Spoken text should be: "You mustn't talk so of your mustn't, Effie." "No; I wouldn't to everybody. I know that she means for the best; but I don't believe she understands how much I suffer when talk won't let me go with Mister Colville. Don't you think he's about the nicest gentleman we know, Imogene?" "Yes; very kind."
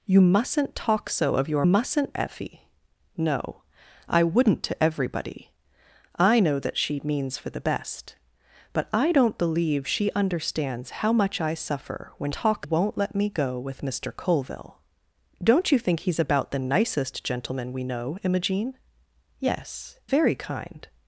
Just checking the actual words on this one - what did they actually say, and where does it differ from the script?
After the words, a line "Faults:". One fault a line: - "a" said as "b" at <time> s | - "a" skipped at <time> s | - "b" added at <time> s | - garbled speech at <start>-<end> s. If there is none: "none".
"You mustn't talk so of your mustn't, Effie." "No; I wouldn't to everybody. I know that she means for the best; but I don't believe she understands how much I suffer when talk won't let me go with Mister Colville. Don't you think he's about the nicest gentleman we know, Imogene?" "Yes; very kind."
Faults:
none